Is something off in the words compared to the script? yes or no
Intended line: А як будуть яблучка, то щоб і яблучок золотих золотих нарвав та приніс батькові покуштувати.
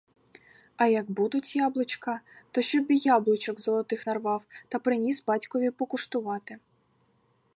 yes